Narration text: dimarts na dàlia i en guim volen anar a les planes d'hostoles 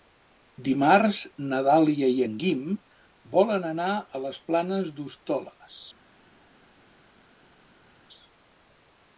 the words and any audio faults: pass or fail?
pass